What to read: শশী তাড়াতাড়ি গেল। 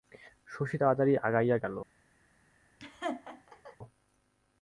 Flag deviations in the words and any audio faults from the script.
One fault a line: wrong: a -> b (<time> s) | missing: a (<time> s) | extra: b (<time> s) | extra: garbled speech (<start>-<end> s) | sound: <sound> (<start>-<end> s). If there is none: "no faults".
extra: আগাইয়া (1.2 s)
sound: laugh (2.8-3.8 s)